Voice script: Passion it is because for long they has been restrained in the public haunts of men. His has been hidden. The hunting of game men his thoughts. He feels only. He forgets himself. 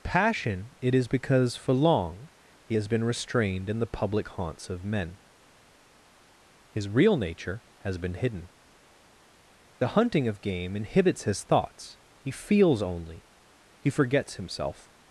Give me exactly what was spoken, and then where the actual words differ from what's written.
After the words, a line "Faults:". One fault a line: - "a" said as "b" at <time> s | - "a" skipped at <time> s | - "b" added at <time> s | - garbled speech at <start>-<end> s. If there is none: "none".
Passion it is because for long he has been restrained in the public haunts of men. His real nature has been hidden. The hunting of game inhibits his thoughts. He feels only. He forgets himself.
Faults:
- "they" said as "he" at 2.6 s
- "real nature" added at 6.9 s
- "men" said as "inhibits" at 10.8 s